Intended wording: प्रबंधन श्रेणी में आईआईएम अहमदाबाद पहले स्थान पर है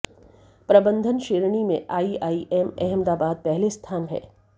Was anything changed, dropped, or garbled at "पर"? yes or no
yes